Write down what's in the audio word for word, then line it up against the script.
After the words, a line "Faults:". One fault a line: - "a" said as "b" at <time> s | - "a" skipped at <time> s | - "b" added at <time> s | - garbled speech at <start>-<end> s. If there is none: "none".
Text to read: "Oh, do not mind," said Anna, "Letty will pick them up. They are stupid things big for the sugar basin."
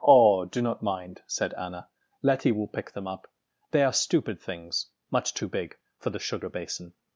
"Oh, do not mind," said Anna, "Letty will pick them up. They are stupid things much too big for the sugar basin."
Faults:
- "much too" added at 5.1 s